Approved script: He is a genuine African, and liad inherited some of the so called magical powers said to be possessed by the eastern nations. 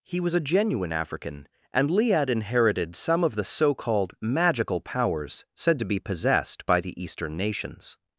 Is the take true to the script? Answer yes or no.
no